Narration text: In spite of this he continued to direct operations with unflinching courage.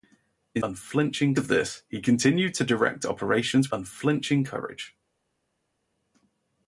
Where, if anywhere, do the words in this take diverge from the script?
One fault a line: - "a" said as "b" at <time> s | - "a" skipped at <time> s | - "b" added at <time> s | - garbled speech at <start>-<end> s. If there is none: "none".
- "spite" said as "unflinching" at 0.6 s
- "with" skipped at 3.7 s